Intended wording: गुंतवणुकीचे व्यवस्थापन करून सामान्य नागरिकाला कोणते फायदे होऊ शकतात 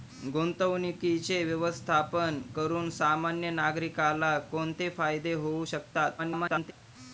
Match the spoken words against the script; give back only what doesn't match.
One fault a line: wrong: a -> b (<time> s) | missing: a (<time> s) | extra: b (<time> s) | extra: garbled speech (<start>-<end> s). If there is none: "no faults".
extra: garbled speech (6.2-6.7 s)